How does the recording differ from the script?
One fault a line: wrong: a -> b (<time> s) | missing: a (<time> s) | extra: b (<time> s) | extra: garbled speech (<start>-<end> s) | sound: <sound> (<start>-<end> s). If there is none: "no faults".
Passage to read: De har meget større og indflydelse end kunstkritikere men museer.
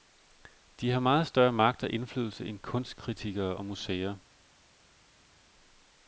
extra: magt (1.5 s)
wrong: men -> og (3.5 s)